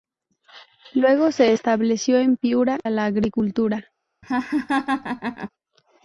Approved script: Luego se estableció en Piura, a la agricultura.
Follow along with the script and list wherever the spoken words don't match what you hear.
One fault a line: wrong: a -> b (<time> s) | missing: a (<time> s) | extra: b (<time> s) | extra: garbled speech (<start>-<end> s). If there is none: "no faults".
no faults